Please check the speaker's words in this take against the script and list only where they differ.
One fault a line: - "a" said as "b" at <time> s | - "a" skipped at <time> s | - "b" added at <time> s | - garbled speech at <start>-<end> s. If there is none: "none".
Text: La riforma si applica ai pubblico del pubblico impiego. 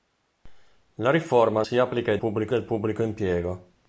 none